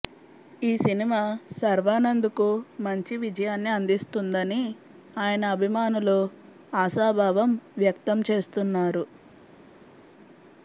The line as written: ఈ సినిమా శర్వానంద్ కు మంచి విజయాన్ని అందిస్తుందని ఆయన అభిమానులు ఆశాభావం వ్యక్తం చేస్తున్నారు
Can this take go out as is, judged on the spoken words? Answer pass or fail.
pass